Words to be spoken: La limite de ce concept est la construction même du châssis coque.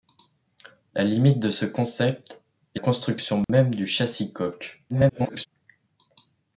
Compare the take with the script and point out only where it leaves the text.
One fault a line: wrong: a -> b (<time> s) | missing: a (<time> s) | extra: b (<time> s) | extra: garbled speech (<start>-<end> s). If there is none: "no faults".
missing: la (2.8 s)
extra: garbled speech (4.9-5.5 s)